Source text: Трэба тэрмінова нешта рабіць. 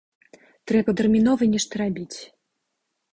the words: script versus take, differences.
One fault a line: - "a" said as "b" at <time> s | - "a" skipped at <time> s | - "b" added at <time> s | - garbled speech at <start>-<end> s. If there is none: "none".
none